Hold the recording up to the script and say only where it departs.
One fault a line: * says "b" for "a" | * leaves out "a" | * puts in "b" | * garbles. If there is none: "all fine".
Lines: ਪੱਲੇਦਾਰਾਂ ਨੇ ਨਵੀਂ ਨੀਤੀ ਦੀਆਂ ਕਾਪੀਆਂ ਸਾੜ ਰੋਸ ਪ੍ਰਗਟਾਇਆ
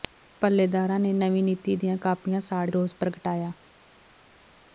all fine